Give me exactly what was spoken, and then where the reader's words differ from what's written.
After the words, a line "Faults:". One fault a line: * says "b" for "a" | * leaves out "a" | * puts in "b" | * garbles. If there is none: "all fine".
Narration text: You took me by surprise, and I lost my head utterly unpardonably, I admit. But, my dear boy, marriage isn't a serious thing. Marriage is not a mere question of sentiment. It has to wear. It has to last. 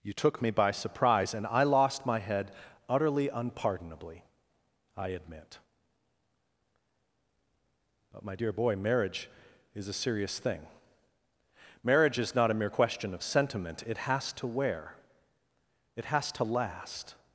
You took me by surprise, and I lost my head utterly unpardonably, I admit. But, my dear boy, marriage is a serious thing. Marriage is not a mere question of sentiment. It has to wear. It has to last.
Faults:
* says "is" for "isn't"